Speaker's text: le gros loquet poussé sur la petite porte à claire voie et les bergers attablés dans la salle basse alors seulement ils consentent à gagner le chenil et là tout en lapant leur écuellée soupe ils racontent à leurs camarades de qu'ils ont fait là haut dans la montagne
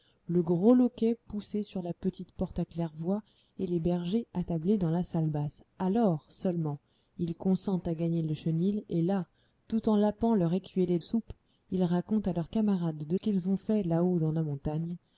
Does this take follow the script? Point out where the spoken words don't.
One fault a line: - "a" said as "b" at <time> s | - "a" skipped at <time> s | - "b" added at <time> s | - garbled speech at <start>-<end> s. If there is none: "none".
none